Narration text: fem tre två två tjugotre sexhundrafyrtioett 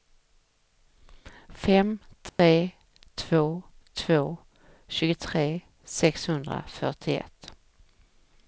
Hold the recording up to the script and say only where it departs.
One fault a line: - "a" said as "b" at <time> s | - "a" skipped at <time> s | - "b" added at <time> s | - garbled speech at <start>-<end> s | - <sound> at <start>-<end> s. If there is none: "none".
- dropout at 2.3-2.4 s